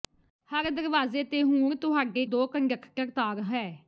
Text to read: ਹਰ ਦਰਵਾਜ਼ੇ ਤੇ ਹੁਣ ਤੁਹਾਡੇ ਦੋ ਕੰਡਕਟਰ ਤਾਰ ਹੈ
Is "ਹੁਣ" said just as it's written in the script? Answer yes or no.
yes